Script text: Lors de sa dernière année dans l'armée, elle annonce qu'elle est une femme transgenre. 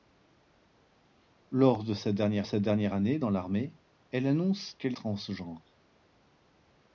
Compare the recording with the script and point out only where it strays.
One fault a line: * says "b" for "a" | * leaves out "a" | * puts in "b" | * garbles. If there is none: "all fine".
* puts in "sa dernière"
* leaves out "est une femme"